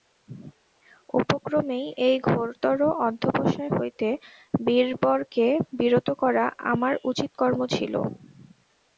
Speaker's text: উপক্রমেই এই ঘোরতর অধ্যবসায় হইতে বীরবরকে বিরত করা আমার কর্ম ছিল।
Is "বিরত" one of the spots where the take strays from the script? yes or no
no